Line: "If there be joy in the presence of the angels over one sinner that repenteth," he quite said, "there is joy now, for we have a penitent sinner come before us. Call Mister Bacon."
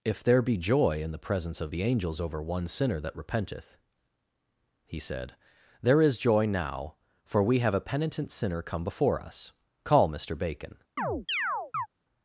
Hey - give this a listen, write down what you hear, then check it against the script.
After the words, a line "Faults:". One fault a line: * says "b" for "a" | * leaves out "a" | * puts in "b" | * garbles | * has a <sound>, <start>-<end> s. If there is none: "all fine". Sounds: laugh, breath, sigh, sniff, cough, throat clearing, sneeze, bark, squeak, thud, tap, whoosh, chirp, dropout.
"If there be joy in the presence of the angels over one sinner that repenteth," he said, "there is joy now, for we have a penitent sinner come before us. Call Mister Bacon."
Faults:
* leaves out "quite"
* has a chirp, 11.0-11.9 s